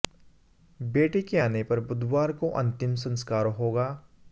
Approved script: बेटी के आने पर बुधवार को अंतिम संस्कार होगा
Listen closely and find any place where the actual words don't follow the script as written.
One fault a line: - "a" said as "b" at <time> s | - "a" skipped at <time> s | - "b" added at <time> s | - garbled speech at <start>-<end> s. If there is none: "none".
none